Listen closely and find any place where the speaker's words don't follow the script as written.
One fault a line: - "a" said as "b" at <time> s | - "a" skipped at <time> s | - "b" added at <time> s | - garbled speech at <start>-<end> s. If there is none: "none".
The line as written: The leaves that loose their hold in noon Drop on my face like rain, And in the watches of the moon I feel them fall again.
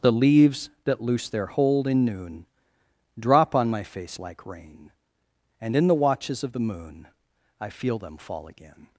none